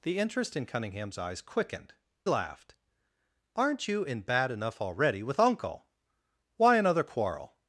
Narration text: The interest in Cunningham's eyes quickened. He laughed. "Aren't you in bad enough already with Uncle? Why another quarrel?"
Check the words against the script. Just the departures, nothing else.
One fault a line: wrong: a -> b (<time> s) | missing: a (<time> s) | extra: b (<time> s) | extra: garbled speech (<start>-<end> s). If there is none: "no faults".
missing: He (1.9 s)